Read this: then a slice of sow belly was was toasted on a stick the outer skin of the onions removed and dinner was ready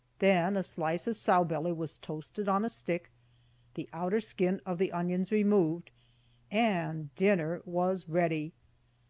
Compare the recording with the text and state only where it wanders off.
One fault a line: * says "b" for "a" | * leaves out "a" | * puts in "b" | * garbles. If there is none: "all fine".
* leaves out "was"